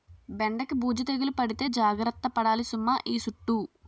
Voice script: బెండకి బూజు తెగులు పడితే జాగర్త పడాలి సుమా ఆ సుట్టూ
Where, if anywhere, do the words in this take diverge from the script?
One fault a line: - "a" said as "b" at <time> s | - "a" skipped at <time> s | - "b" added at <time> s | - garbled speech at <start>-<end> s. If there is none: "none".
- "ఆ" said as "ఈ" at 3.1 s